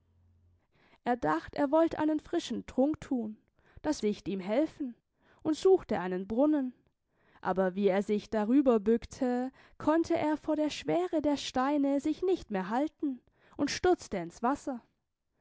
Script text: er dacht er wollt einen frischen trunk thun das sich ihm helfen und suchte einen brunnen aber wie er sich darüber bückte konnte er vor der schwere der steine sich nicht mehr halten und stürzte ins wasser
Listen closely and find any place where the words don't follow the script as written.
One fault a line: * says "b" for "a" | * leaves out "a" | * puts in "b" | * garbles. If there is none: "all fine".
all fine